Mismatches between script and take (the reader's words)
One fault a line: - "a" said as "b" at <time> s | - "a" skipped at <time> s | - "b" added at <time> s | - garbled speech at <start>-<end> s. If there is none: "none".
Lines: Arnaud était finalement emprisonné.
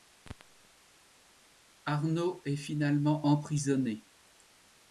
- "était" said as "est" at 2.4 s